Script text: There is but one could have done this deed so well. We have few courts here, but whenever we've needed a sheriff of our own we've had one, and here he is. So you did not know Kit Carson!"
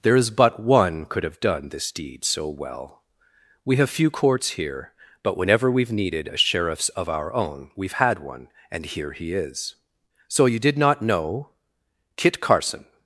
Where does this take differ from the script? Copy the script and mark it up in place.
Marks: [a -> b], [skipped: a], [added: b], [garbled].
There is but one could have done this deed so well. We have few courts here, but whenever we've needed a [sheriff -> sheriffs] of our own we've had one, and here he is. So you did not know Kit Carson!"